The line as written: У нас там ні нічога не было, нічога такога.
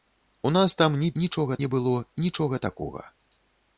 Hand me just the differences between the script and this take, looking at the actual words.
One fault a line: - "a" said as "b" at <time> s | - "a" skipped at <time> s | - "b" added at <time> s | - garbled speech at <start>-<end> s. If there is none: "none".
none